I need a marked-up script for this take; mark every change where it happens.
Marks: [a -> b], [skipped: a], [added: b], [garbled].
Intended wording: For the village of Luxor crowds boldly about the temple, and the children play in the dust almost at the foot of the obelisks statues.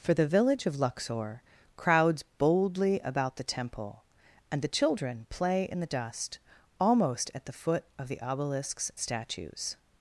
For the village of Luxor crowds boldly about the temple, and the children play in the dust almost at the foot of the obelisks statues.